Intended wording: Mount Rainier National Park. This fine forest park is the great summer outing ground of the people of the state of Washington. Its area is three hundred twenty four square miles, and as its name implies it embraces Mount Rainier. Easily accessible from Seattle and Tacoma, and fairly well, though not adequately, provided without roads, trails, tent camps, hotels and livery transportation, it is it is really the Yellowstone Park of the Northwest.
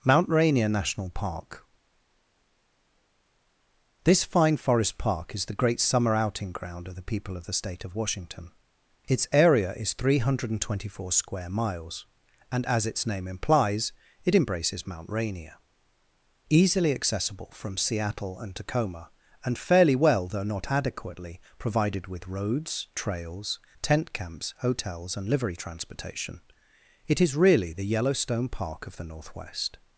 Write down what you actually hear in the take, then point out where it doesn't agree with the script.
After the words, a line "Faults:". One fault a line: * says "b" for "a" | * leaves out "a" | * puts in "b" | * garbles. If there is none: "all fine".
Mount Rainier National Park. This fine forest park is the great summer outing ground of the people of the state of Washington. Its area is three hundred twenty four square miles, and as its name implies it embraces Mount Rainier. Easily accessible from Seattle and Tacoma, and fairly well, though not adequately, provided with roads, trails, tent camps, hotels and livery transportation, it is really the Yellowstone Park of the Northwest.
Faults:
* says "with" for "without"
* leaves out "it is"